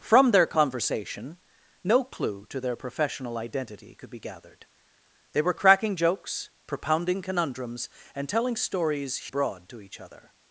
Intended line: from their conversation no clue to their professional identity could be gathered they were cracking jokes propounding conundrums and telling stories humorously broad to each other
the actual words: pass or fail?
fail